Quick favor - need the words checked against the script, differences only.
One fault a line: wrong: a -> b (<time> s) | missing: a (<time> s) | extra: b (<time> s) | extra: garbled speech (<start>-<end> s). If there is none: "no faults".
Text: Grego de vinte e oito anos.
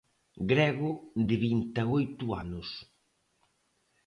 no faults